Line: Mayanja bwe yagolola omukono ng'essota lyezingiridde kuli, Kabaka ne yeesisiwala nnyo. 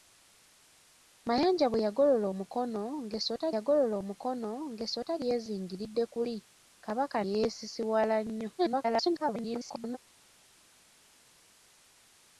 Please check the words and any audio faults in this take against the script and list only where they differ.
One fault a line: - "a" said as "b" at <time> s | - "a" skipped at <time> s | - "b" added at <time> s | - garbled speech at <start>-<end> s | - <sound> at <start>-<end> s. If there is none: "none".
- "yagolola omukono ng'essota" added at 3.6 s
- "ne" skipped at 7.2 s
- garbled speech at 8.6-10.0 s